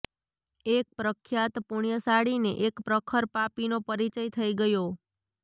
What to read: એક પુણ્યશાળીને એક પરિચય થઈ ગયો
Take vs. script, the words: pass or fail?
fail